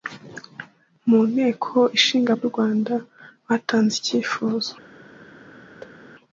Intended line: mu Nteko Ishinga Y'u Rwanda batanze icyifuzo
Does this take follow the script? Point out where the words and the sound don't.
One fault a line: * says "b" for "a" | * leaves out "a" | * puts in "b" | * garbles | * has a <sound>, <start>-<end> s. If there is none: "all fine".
* has a thud, 5.8-6.0 s